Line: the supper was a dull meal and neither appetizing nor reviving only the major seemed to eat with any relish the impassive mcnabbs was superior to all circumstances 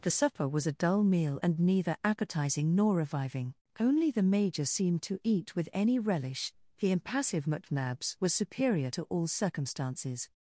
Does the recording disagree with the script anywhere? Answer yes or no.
no